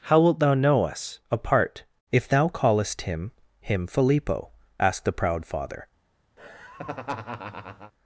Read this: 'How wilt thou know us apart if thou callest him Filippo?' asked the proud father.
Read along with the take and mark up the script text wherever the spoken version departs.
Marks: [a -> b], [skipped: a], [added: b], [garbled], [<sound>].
'How wilt thou know us apart if thou callest him [added: him] Filippo?' asked the proud father. [laugh]